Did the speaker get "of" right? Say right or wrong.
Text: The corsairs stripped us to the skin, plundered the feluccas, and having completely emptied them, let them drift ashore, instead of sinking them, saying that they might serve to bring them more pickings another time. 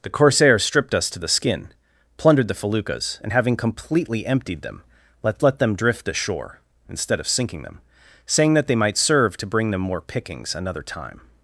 right